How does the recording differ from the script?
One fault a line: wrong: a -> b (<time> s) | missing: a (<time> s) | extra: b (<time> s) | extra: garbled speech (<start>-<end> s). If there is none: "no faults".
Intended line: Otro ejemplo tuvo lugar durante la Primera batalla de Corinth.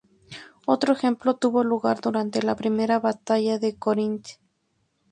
no faults